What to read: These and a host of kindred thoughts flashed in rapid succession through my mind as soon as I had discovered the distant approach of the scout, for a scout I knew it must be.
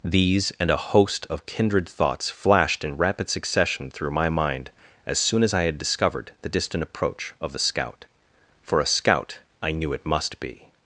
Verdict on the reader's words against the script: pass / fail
pass